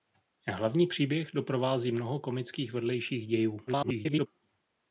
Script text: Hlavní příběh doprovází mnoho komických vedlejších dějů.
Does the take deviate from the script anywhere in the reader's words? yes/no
yes